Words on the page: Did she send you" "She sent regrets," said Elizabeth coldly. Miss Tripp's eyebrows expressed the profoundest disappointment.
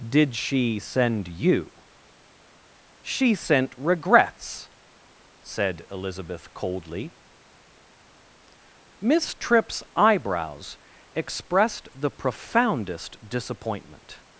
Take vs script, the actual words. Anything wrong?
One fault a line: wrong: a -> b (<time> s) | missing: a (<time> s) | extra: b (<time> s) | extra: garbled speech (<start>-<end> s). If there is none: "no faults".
no faults